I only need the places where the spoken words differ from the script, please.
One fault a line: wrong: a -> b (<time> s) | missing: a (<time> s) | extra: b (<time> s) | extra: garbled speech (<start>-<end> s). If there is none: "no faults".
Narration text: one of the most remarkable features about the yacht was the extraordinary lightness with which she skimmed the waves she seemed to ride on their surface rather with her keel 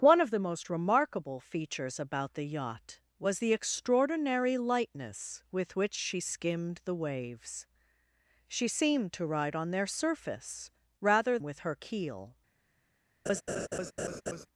no faults